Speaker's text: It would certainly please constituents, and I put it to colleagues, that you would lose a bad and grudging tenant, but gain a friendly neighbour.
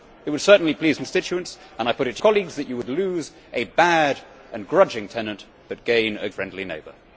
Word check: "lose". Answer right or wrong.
right